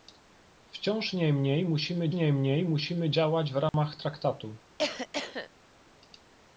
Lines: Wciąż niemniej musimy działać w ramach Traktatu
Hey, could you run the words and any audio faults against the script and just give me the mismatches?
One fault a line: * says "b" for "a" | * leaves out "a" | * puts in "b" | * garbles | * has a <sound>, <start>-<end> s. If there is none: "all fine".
* puts in "niemniej musimy"
* has a dropout, 3.7-3.7 s
* has a cough, 4.8-5.5 s